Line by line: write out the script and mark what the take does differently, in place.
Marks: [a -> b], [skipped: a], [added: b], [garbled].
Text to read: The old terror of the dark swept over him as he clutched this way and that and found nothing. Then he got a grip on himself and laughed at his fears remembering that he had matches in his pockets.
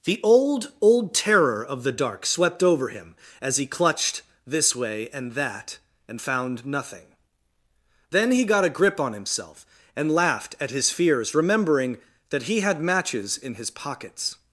The old [added: old] terror of the dark swept over him as he clutched this way and that and found nothing. Then he got a grip on himself and laughed at his fears remembering that he had matches in his pockets.